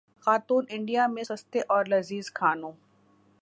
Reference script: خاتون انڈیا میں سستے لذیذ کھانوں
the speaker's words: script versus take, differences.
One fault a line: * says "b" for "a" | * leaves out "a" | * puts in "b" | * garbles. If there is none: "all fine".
* puts in "اور"